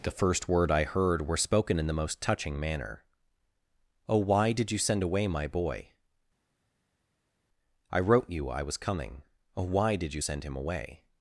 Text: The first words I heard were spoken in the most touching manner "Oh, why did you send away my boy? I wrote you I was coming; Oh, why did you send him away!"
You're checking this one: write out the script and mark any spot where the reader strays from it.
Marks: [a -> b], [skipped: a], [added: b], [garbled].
The first [words -> word] I heard were spoken in the most touching manner "Oh, why did you send away my boy? I wrote you I was coming; Oh, why did you send him away!"